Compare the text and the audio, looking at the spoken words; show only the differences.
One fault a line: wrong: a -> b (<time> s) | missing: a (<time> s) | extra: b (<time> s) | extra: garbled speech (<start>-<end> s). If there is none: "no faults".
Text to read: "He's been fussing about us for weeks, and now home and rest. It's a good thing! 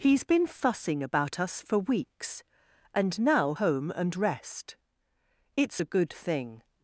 no faults